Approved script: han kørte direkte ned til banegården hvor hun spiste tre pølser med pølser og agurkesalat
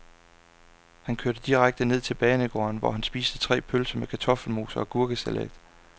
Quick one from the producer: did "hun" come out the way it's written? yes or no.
no